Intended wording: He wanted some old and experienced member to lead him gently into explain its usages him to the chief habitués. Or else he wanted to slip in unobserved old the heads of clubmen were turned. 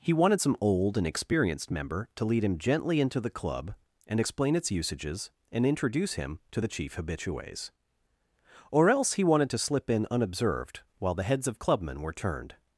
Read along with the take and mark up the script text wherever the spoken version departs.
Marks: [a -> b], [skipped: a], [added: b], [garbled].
He wanted some old and experienced member to lead him gently into [added: the club and] explain its usages [added: and introduce] him to the chief habitués. Or else he wanted to slip in unobserved [old -> while] the heads of clubmen were turned.